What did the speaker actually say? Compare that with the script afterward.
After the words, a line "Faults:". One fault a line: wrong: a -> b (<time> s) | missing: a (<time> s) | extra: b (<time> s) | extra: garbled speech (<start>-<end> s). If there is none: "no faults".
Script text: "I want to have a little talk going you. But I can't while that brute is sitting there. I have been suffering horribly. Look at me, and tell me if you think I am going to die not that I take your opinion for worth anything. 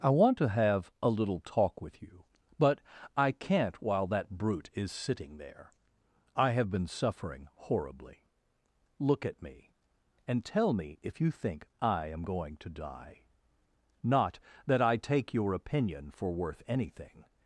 "I want to have a little talk with you. But I can't while that brute is sitting there. I have been suffering horribly. Look at me, and tell me if you think I am going to die not that I take your opinion for worth anything.
Faults:
wrong: going -> with (1.8 s)